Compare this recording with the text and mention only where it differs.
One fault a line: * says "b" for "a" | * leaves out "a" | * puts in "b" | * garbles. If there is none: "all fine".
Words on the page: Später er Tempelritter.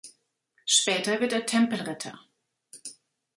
* puts in "wird"